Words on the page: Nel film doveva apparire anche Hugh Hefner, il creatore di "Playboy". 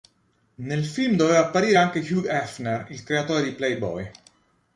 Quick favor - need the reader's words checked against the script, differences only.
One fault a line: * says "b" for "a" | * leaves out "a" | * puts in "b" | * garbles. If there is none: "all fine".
all fine